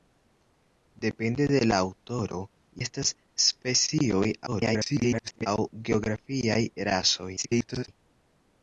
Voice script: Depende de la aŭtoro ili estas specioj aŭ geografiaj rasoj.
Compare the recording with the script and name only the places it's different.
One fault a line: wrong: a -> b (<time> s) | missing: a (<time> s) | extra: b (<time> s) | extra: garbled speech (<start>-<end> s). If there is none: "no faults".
missing: ili (2.4 s)
extra: garbled speech (4.5-5.5 s)
extra: garbled speech (7.4-7.9 s)